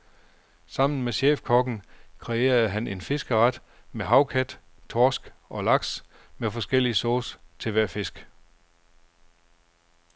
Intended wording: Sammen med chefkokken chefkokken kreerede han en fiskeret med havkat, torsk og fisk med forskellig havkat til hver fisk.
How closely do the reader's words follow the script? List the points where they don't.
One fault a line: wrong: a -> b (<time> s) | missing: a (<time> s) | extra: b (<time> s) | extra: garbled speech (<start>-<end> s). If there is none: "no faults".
missing: chefkokken (1.8 s)
wrong: fisk -> laks (5.6 s)
wrong: havkat -> sauce (7.0 s)